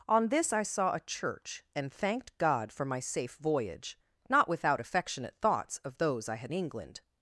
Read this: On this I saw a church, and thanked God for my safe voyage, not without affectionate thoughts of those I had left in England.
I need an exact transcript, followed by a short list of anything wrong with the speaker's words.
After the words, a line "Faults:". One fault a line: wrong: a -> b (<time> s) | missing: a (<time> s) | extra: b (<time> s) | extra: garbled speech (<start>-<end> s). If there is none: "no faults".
On this I saw a church, and thanked God for my safe voyage, not without affectionate thoughts of those I had England.
Faults:
missing: left in (6.5 s)